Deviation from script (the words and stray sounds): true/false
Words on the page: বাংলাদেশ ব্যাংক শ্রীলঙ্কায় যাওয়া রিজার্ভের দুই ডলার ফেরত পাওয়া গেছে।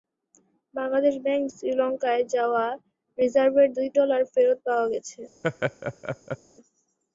true